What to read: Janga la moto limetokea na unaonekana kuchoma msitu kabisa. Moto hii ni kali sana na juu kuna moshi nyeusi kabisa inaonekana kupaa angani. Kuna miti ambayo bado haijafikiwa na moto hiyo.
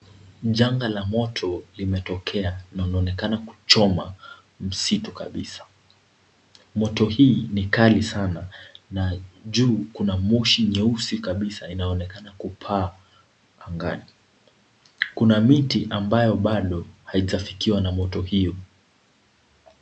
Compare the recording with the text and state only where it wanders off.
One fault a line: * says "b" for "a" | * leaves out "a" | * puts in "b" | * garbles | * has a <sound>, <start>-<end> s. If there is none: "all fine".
all fine